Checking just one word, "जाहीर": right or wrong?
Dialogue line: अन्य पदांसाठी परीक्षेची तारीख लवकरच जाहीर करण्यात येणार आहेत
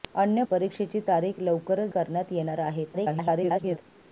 wrong